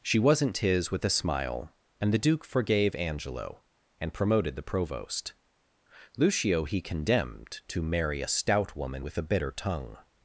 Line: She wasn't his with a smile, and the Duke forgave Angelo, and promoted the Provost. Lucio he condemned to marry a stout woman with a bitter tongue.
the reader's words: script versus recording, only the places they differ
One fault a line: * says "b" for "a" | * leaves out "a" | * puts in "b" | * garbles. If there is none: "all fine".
all fine